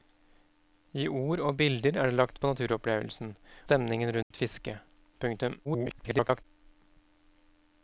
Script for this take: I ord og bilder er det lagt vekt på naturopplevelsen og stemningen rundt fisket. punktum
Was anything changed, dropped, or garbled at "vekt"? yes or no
yes